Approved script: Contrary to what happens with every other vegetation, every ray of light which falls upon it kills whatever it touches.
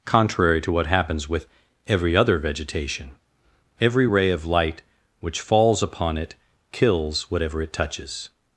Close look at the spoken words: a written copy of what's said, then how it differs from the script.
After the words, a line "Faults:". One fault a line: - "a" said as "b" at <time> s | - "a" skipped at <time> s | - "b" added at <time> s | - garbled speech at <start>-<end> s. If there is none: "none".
Contrary to what happens with every other vegetation, every ray of light which falls upon it kills whatever it touches.
Faults:
none